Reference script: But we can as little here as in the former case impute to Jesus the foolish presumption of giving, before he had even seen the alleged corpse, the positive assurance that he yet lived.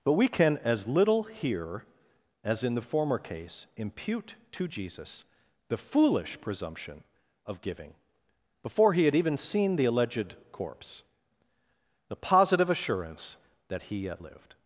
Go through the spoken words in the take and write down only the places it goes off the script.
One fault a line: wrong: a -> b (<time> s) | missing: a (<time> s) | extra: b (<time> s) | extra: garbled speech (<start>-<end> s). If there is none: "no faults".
no faults